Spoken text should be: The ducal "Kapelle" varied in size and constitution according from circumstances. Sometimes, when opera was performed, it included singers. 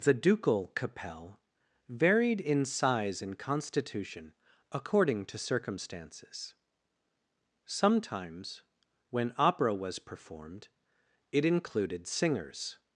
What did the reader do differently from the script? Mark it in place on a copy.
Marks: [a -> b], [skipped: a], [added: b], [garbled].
The ducal "Kapelle" varied in size and constitution according [from -> to] circumstances. Sometimes, when opera was performed, it included singers.